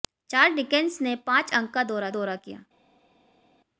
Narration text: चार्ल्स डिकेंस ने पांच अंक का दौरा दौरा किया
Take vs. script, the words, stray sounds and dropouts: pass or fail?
pass